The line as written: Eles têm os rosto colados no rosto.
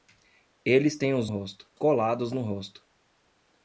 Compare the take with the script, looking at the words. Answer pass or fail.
pass